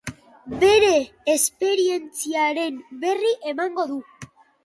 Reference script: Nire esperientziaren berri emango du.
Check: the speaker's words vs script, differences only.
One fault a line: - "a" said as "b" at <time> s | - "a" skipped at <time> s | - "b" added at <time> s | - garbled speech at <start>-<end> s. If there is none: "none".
- "Nire" said as "Bere" at 0.6 s